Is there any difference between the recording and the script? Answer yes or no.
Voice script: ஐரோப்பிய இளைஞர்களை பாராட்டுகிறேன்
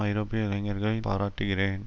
no